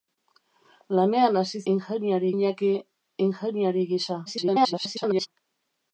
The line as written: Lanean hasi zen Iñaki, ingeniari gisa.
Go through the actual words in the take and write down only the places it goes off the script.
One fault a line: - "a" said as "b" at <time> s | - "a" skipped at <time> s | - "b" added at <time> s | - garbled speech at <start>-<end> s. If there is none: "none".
- "zen" said as "ingeniari" at 1.7 s
- garbled speech at 4.3-5.3 s